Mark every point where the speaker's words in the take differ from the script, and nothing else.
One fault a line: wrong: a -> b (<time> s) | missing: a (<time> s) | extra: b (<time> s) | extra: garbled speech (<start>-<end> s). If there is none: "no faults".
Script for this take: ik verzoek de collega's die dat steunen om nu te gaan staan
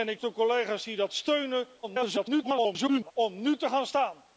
missing: verzoek (0.2 s)
extra: garbled speech (1.8-3.1 s)